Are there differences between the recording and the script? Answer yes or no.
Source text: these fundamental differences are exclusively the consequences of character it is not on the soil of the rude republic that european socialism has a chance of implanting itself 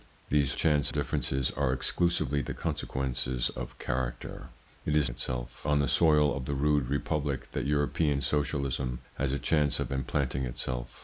yes